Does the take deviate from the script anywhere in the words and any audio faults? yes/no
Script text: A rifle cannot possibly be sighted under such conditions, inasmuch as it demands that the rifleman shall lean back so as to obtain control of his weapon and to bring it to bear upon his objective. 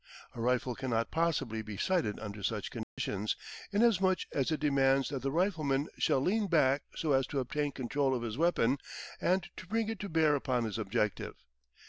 yes